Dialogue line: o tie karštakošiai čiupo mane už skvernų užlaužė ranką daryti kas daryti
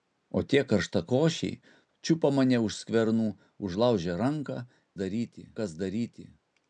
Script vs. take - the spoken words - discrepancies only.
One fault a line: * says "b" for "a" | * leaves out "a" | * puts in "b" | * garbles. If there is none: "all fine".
all fine